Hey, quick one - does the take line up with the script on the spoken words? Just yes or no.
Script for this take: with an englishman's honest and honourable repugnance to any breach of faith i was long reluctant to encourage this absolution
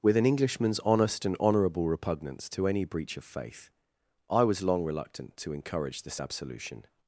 yes